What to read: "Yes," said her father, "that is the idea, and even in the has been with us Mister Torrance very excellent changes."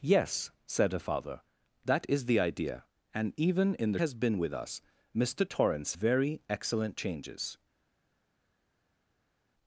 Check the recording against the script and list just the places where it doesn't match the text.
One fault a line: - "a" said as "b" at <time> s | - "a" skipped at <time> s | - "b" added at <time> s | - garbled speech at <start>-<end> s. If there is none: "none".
none